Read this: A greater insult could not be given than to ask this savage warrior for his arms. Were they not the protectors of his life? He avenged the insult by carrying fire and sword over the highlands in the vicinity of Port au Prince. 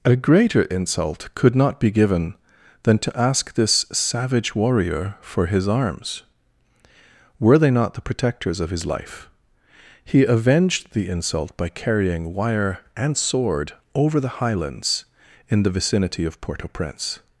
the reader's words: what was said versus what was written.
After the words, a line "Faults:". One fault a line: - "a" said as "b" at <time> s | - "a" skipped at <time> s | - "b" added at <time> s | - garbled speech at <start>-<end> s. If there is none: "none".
A greater insult could not be given than to ask this savage warrior for his arms. Were they not the protectors of his life? He avenged the insult by carrying wire and sword over the highlands in the vicinity of Port au Prince.
Faults:
- "fire" said as "wire" at 12.3 s